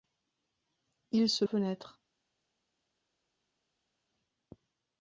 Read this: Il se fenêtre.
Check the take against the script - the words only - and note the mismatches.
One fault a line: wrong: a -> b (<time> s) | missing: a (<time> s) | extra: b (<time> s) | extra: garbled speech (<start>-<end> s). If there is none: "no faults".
no faults